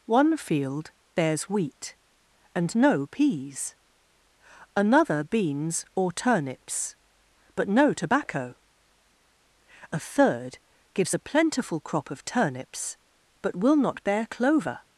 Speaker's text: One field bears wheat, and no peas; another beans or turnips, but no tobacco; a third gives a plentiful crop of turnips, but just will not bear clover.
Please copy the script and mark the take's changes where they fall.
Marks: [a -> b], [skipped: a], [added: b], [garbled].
One field bears wheat, and no peas; another beans or turnips, but no tobacco; a third gives a plentiful crop of turnips, but [skipped: just] will not bear clover.